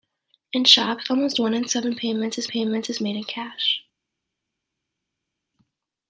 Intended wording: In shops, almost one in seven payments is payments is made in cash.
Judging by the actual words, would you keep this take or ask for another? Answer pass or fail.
pass